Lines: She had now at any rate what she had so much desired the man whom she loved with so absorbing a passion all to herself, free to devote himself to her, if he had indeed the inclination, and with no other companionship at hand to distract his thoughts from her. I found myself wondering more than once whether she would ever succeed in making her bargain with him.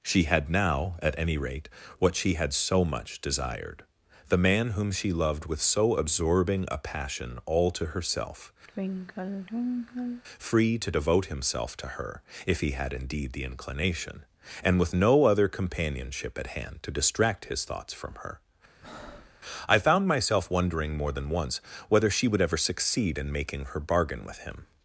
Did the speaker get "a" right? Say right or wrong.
right